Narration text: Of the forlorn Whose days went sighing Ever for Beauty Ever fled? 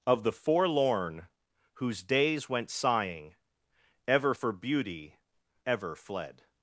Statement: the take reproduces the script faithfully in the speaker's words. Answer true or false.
true